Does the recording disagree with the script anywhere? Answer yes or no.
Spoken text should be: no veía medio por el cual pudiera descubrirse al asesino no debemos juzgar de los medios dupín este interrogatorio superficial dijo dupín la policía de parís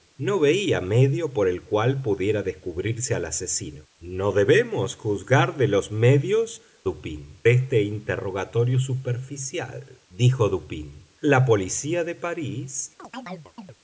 no